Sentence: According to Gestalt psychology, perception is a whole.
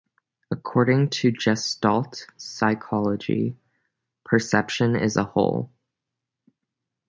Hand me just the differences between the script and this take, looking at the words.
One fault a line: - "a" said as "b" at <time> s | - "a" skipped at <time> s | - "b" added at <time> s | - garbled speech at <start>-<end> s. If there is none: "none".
none